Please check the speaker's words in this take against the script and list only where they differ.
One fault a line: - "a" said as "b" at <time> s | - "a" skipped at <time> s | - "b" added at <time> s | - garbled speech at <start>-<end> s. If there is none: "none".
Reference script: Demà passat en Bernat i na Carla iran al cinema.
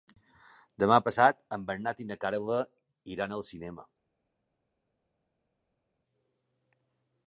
none